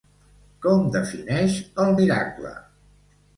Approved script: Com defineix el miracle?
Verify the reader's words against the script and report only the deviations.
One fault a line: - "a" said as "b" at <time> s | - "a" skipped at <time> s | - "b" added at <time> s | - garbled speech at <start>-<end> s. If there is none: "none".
none